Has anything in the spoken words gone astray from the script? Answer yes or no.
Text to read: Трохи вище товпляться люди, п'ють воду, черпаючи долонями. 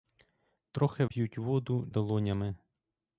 yes